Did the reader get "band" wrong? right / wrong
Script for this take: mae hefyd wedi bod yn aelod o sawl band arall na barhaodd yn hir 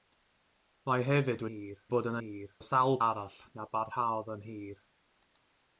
wrong